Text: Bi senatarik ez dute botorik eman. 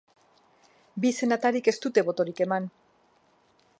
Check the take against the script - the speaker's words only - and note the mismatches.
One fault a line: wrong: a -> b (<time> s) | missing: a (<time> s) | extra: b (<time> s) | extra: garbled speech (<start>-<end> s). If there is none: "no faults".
no faults